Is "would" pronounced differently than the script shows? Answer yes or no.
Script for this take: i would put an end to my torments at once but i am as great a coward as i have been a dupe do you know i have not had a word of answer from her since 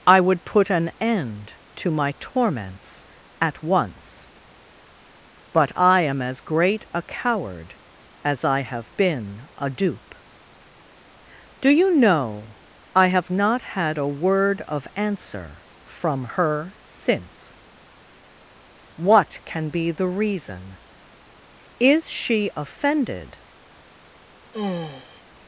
no